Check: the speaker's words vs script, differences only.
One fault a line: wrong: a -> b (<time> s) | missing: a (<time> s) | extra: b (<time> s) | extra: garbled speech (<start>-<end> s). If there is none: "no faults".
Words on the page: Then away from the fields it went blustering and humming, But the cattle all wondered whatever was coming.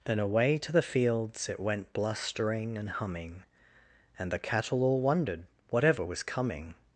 wrong: from -> to (0.6 s)
wrong: But -> And (4.2 s)